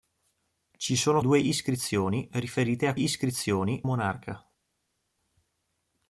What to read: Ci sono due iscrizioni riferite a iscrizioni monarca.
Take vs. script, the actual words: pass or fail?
pass